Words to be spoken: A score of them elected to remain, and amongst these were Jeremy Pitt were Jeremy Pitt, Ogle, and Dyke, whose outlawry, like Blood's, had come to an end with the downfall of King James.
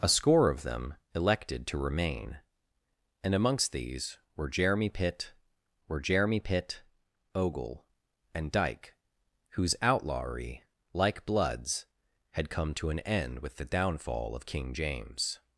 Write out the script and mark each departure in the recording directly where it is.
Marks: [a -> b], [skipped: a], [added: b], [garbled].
A score of them elected to remain, and amongst these were Jeremy Pitt were Jeremy Pitt, Ogle, and Dyke, whose outlawry, like Blood's, had come to an end with the downfall of King James.